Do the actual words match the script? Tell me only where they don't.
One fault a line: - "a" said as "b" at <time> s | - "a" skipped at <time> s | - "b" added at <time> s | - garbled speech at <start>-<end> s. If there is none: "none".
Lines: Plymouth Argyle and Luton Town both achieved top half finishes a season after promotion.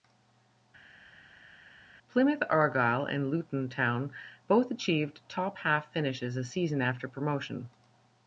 none